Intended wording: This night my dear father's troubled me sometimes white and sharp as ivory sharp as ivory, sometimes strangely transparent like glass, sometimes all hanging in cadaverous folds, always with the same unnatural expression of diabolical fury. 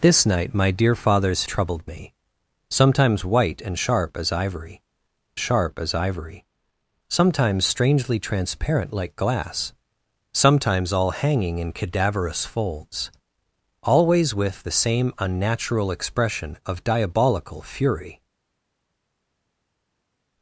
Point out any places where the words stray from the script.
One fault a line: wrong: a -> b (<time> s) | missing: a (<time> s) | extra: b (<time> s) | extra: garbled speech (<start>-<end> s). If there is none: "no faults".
no faults